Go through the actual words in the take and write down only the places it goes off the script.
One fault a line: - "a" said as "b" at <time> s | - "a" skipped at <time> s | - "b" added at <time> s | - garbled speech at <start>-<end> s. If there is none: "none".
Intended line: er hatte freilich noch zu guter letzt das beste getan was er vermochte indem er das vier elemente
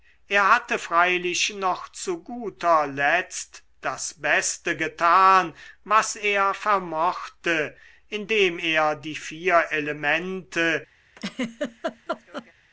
- "das" said as "die" at 9.0 s